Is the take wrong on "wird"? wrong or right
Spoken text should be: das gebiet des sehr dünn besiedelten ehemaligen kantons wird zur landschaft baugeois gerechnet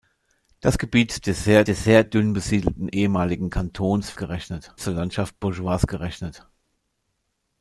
wrong